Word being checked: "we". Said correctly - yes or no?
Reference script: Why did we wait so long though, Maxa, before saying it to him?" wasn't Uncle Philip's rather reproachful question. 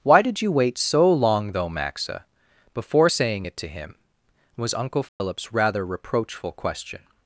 no